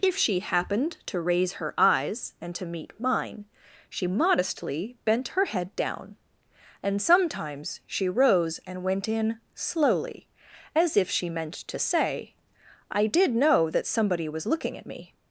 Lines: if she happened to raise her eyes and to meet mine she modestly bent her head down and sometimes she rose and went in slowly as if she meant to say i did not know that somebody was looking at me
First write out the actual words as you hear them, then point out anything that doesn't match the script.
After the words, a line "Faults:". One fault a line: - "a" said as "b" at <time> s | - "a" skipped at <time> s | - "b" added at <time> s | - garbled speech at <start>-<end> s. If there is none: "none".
if she happened to raise her eyes and to meet mine she modestly bent her head down and sometimes she rose and went in slowly as if she meant to say i did know that somebody was looking at me
Faults:
- "not" skipped at 13.3 s